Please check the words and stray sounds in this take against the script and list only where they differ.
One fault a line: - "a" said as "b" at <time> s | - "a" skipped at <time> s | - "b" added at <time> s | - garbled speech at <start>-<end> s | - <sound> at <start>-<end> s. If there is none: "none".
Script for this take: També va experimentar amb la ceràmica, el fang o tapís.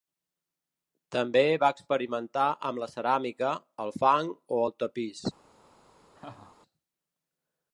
- "el" added at 4.7 s
- laugh at 6.1-6.6 s